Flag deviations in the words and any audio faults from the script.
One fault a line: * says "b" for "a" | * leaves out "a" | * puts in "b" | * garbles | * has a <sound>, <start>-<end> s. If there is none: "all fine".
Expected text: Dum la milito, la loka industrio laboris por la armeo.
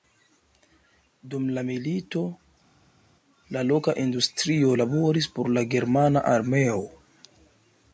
* puts in "germana"